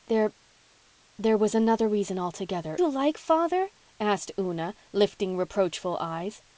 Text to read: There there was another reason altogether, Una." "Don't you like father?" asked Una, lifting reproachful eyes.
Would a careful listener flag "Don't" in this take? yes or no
yes